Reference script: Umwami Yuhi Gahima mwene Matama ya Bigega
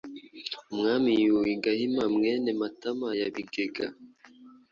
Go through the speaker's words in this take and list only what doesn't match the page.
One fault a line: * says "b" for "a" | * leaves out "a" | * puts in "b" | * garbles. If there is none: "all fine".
all fine